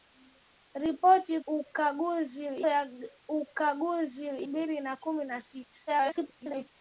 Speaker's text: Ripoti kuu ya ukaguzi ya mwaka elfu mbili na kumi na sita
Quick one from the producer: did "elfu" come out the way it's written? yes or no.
no